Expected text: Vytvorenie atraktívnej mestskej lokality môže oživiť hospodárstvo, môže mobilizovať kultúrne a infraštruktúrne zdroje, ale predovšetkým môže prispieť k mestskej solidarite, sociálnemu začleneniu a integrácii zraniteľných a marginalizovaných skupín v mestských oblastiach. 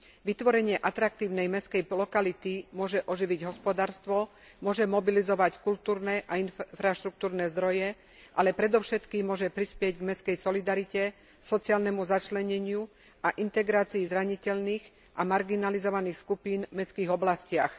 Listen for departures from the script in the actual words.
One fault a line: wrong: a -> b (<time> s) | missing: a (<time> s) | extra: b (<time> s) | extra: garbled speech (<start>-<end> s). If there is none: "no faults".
no faults